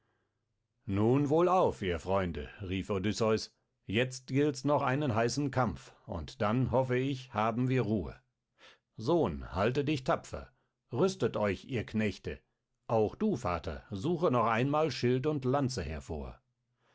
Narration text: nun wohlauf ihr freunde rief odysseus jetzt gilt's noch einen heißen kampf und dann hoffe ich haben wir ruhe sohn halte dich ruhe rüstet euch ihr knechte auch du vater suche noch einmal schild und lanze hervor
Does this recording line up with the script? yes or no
no